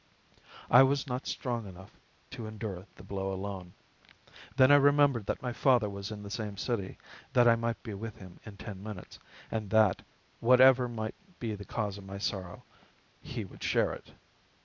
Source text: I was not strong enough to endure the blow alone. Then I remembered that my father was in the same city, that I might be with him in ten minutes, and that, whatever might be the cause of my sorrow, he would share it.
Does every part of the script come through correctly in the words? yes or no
yes